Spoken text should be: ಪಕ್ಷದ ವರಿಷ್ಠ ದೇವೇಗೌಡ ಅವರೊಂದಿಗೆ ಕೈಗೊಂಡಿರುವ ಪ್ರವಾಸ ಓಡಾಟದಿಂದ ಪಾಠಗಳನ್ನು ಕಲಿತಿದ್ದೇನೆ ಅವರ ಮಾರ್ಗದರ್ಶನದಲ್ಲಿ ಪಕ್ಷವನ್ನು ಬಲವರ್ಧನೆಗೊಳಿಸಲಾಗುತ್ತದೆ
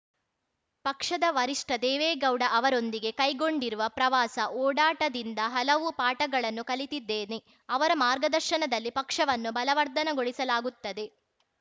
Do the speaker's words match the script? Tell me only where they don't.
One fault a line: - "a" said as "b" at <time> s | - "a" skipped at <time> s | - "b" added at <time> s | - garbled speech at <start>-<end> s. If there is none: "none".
- "ಹಲವು" added at 5.5 s